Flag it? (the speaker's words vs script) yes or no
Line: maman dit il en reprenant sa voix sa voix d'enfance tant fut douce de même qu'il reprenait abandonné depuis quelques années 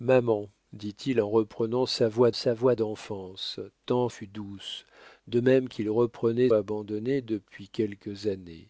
no